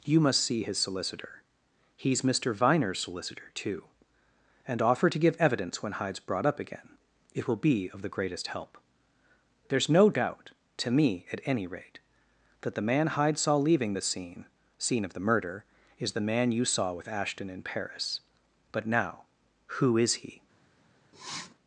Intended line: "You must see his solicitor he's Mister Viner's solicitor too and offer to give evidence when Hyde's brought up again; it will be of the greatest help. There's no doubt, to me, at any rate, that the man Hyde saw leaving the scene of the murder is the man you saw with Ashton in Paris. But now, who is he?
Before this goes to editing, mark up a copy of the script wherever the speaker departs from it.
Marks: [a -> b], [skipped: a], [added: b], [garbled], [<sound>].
"You must see his solicitor he's Mister Viner's solicitor too and offer to give evidence when Hyde's brought up again; it will be of the greatest help. There's no doubt, to me, at any rate, that the man Hyde saw leaving the scene [added: scene] of the murder is the man you saw with Ashton in Paris. But now, who is he? [sniff]